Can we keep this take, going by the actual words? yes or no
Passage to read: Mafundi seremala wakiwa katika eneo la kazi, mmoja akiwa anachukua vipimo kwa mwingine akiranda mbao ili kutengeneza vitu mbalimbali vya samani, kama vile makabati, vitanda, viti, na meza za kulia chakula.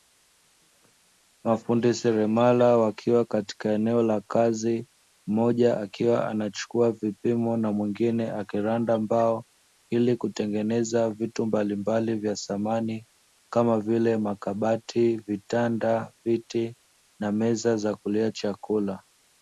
no